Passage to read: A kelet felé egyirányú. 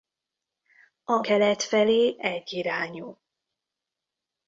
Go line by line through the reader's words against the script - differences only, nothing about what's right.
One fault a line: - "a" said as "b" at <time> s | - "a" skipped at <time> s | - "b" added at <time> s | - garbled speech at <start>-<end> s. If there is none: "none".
none